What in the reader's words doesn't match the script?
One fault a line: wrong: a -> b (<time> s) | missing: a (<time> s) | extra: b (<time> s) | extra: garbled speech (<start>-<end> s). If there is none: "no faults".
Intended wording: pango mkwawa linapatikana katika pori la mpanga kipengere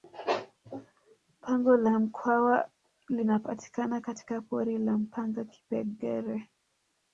extra: la (1.8 s)